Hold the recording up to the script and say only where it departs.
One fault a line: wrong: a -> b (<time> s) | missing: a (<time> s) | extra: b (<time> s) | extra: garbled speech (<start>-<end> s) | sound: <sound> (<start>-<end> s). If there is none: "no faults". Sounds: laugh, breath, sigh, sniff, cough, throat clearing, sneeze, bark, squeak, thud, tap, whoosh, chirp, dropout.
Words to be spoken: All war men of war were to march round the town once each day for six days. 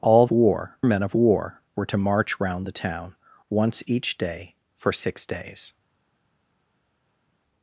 no faults